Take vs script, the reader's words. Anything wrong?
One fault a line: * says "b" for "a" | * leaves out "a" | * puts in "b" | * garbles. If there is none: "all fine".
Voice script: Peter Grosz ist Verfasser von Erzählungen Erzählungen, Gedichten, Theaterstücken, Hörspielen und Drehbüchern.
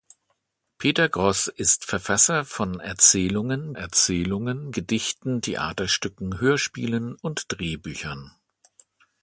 all fine